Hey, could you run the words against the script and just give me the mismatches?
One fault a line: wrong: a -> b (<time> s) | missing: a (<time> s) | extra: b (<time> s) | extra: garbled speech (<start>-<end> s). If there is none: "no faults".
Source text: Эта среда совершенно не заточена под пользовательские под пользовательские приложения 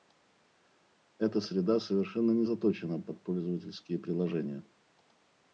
missing: под пользовательские (4.0 s)